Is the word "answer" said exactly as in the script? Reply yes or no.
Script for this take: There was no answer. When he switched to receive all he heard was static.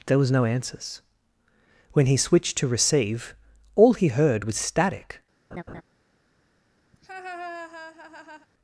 no